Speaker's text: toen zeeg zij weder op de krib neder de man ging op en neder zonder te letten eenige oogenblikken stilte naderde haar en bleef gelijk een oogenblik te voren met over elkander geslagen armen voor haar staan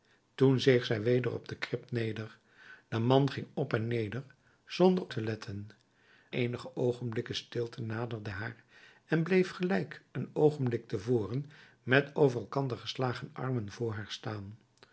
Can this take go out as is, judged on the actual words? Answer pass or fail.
pass